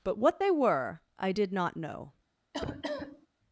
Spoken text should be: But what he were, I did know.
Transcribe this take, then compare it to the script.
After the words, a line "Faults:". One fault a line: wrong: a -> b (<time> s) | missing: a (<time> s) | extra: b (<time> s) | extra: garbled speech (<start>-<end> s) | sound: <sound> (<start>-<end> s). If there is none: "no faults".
But what they were, I did not know.
Faults:
wrong: he -> they (0.4 s)
extra: not (1.5 s)
sound: cough (2.5-3.3 s)